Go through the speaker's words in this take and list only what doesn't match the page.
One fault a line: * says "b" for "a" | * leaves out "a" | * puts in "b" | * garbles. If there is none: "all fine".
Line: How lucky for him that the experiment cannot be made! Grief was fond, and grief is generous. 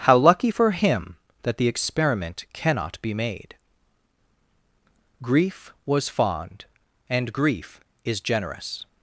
all fine